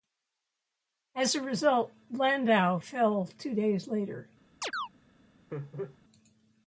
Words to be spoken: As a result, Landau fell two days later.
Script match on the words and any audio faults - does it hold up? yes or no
no